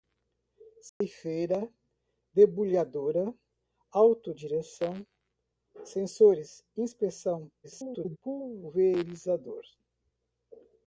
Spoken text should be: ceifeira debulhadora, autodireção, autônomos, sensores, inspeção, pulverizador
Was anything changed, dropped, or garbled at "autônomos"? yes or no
yes